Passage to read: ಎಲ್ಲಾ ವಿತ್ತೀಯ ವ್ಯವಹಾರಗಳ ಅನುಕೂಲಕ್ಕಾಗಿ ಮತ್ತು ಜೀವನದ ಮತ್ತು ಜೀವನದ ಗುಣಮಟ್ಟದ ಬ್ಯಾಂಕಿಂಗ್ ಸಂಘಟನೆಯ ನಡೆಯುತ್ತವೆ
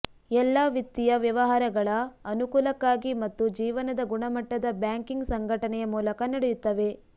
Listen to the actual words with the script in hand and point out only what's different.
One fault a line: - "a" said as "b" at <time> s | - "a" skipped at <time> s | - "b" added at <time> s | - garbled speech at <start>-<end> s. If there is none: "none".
- "ಮತ್ತು ಜೀವನದ" skipped at 4.0 s
- "ಮೂಲಕ" added at 6.0 s